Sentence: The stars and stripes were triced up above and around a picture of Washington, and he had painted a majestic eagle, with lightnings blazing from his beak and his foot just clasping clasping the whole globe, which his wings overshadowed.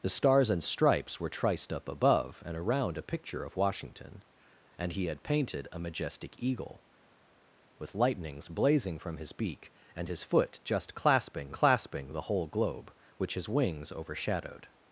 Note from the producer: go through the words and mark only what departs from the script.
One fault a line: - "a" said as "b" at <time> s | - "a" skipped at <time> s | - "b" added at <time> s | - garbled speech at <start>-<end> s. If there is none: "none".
none